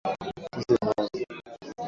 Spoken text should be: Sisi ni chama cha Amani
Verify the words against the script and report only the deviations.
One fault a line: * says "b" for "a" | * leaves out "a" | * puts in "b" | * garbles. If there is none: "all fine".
* leaves out "chama cha"